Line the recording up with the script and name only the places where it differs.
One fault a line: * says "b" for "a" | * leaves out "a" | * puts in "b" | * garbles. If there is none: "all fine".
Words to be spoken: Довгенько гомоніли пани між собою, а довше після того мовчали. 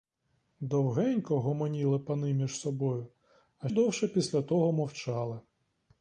all fine